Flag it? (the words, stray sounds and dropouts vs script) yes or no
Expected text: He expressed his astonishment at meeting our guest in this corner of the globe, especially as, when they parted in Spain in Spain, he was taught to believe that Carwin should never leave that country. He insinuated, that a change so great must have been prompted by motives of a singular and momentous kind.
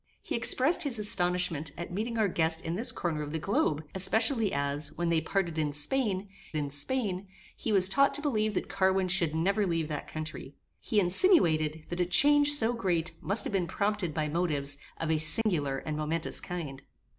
yes